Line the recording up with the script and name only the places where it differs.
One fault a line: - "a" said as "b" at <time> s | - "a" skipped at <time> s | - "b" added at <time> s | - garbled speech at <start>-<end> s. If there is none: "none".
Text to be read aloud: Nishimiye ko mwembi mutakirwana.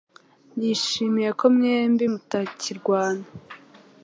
none